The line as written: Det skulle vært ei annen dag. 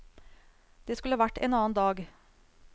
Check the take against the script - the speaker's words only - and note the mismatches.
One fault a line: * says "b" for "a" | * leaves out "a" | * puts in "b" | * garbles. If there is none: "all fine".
* says "en" for "ei"